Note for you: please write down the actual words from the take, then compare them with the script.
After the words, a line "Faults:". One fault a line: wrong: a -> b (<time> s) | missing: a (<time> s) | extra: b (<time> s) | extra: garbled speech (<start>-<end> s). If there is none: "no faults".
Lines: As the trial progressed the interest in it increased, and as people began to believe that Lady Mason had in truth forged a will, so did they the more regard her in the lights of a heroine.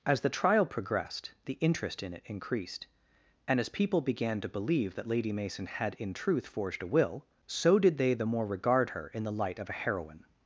As the trial progressed the interest in it increased, and as people began to believe that Lady Mason had in truth forged a will, so did they the more regard her in the light of a heroine.
Faults:
wrong: lights -> light (9.3 s)